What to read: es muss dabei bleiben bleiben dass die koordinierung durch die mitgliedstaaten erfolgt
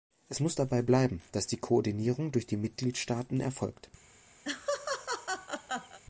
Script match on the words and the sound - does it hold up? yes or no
no